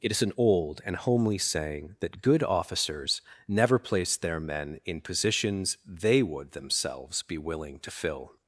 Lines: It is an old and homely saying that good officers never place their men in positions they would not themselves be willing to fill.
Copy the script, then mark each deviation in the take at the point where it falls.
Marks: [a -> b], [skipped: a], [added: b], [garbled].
It is an old and homely saying that good officers never place their men in positions they would [skipped: not] themselves be willing to fill.